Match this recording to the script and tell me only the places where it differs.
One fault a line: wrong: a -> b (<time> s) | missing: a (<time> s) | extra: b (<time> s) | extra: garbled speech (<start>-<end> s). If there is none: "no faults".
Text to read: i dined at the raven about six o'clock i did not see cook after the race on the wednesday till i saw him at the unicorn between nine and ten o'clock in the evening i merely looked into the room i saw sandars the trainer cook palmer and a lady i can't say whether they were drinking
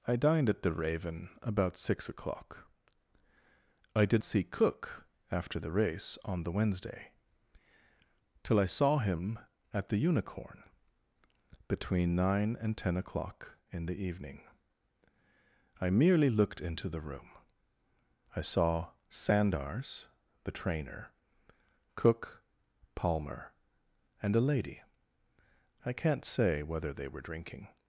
missing: not (4.2 s)